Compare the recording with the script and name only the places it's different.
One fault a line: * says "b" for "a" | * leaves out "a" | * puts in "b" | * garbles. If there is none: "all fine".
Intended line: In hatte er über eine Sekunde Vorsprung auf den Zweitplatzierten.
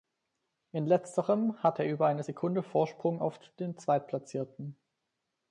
* puts in "letzterem"